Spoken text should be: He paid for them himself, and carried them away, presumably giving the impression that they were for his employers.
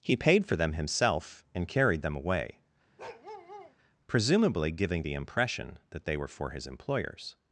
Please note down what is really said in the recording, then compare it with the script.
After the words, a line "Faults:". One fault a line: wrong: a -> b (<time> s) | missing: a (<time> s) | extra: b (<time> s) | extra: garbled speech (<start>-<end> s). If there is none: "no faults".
He paid for them himself, and carried them away, presumably giving the impression that they were for his employers.
Faults:
no faults